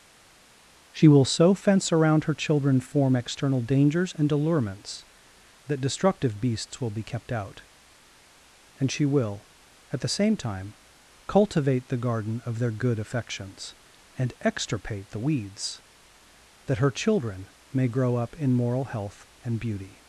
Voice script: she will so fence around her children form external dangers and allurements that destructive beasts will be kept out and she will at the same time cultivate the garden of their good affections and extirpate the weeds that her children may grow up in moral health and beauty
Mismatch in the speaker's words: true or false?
false